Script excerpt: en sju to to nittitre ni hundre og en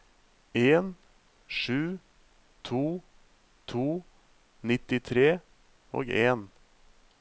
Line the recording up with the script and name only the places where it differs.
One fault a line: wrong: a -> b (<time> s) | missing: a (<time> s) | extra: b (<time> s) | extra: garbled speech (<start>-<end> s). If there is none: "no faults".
missing: ni hundre (5.4 s)